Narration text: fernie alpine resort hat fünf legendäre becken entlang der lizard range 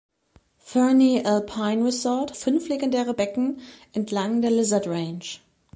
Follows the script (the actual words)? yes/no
no